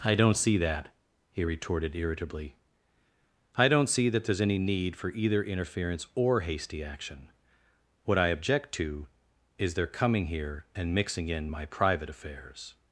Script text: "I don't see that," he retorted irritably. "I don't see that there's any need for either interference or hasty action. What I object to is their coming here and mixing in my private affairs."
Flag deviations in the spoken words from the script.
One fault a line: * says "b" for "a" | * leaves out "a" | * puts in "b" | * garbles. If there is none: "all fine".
all fine